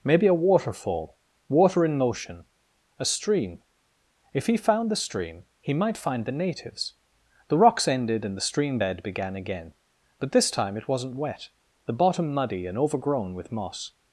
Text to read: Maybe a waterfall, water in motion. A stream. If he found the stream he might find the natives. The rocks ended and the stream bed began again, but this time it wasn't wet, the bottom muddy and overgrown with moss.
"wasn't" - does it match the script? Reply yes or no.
yes